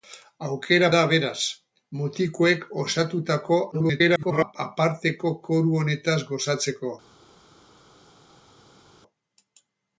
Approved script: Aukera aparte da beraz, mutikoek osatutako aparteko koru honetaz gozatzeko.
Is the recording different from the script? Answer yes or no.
yes